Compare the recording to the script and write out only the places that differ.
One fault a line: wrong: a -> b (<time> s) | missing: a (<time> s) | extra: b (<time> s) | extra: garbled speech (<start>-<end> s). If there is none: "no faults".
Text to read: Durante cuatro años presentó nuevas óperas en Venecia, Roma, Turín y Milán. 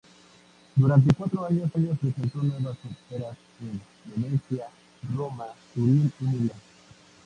extra: años (1.7 s)